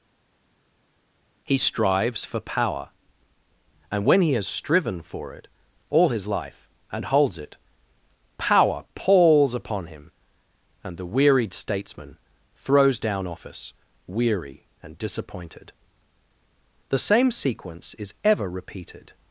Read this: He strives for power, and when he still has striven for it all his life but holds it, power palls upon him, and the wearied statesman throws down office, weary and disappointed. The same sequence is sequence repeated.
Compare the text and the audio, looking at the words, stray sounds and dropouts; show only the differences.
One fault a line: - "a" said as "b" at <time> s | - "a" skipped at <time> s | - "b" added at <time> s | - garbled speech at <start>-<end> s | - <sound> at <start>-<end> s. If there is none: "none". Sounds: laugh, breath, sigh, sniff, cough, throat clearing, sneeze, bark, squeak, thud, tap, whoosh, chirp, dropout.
- "still" skipped at 4.3 s
- "but" said as "and" at 6.9 s
- "sequence" said as "ever" at 18.2 s